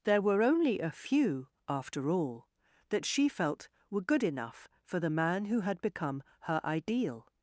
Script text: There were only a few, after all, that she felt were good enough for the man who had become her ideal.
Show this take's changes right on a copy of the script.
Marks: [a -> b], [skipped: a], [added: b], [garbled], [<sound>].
There were only a few, after all, that she felt were good enough for the man who had become her ideal.